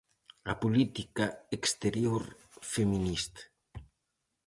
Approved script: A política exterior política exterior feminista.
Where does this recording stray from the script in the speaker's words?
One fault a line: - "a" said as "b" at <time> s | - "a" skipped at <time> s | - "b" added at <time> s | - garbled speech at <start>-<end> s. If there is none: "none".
- "política exterior" skipped at 2.2 s